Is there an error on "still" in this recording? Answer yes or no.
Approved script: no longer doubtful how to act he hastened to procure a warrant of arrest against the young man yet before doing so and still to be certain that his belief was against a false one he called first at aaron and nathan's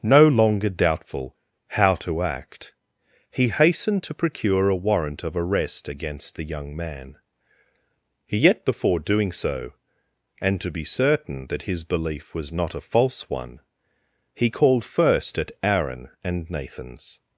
yes